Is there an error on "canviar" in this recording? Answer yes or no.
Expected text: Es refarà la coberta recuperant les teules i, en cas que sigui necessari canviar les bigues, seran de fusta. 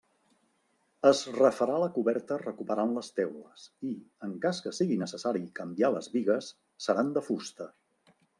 no